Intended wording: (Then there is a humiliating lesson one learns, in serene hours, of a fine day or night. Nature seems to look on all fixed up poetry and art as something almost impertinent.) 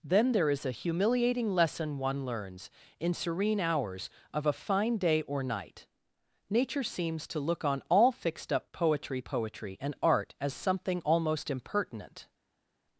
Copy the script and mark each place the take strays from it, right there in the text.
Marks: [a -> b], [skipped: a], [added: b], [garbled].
(Then there is a humiliating lesson one learns, in serene hours, of a fine day or night. Nature seems to look on all fixed up poetry [added: poetry] and art as something almost impertinent.)